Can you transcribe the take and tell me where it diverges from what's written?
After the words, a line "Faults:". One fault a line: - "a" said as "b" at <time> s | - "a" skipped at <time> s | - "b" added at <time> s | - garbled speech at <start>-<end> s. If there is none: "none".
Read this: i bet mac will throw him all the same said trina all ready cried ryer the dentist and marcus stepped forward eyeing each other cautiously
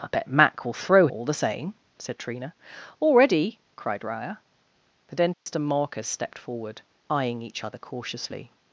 i bet mac will throw all the same said trina all ready cried ryer the dentist and marcus stepped forward eyeing each other cautiously
Faults:
- "him" skipped at 1.1 s